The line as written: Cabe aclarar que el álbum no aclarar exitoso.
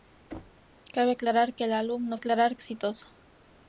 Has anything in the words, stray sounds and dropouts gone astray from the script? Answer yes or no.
yes